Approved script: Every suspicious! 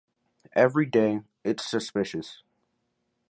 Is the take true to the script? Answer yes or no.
no